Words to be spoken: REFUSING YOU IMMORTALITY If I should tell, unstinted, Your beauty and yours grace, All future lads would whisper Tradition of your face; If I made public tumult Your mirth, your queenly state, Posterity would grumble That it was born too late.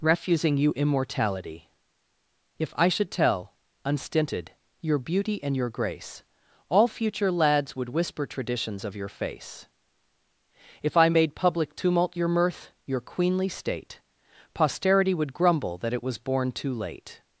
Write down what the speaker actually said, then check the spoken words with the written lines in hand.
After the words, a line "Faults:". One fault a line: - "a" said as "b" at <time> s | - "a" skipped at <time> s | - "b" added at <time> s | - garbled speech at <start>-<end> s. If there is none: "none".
REFUSING YOU IMMORTALITY If I should tell, unstinted, Your beauty and your grace, All future lads would whisper Traditions of your face; If I made public tumult Your mirth, your queenly state, Posterity would grumble That it was born too late.
Faults:
- "yours" said as "your" at 5.5 s
- "Tradition" said as "Traditions" at 8.2 s